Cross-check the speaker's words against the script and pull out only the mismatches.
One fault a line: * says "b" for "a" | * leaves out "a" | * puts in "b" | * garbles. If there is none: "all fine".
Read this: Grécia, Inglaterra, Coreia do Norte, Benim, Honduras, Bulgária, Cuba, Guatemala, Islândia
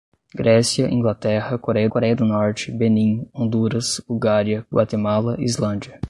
* puts in "Coreia"
* leaves out "Cuba"